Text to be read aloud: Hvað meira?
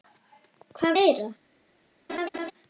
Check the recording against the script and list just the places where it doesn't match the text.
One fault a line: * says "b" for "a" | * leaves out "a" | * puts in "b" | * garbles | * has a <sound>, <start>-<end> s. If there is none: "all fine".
* has a laugh, 2.1-2.5 s